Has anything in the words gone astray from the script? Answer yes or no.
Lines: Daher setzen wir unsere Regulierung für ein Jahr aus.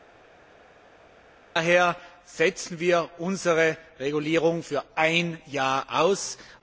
no